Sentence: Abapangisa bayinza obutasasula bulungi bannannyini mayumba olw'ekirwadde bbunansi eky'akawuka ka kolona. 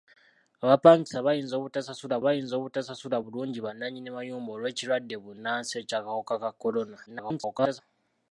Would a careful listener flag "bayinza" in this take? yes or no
no